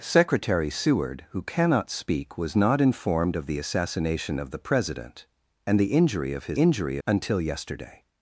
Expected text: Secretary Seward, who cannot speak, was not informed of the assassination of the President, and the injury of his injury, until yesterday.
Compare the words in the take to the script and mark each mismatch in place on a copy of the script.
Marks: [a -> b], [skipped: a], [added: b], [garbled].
Secretary Seward, who cannot speak, was not informed of the assassination of the President, and the injury of his injury, until yesterday.